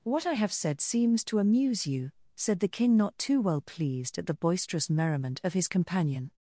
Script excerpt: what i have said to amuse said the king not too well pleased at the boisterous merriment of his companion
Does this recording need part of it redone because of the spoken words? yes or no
yes